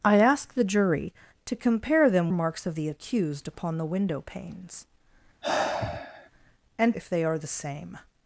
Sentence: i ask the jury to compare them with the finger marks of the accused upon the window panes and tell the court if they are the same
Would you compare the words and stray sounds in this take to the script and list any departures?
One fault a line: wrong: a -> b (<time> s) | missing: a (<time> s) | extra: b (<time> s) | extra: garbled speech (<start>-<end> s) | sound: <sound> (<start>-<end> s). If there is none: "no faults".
missing: with the finger (2.3 s)
sound: sigh (5.4-6.3 s)
missing: tell the court (6.9 s)